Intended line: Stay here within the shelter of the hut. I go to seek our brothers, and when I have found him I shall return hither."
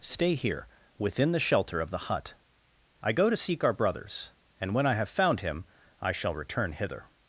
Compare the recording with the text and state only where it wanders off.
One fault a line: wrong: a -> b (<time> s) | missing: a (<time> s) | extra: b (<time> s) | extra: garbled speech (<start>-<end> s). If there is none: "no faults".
no faults